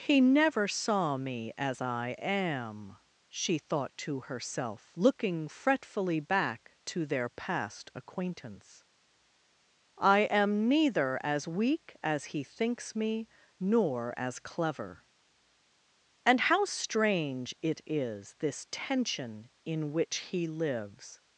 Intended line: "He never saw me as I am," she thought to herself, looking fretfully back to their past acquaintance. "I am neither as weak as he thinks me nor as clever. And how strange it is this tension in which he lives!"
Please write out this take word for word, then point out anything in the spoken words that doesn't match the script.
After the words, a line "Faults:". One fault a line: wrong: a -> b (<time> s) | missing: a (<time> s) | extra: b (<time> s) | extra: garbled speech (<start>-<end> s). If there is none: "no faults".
"He never saw me as I am," she thought to herself, looking fretfully back to their past acquaintance. "I am neither as weak as he thinks me nor as clever. And how strange it is this tension in which he lives!"
Faults:
no faults